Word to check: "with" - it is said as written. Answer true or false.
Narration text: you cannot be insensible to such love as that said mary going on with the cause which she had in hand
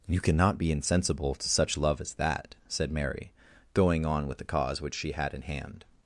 true